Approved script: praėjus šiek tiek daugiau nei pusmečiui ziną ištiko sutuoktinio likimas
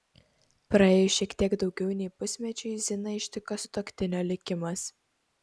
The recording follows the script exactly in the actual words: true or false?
true